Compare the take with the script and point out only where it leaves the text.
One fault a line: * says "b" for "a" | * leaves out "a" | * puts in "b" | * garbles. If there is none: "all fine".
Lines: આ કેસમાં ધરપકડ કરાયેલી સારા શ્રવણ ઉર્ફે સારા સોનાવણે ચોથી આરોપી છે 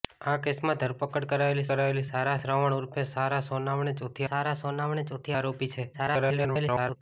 * puts in "કરાયેલી"
* puts in "સારા સોનાવણે ચોથી"
* garbles